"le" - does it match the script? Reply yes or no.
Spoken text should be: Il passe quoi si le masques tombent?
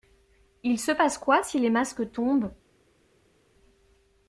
no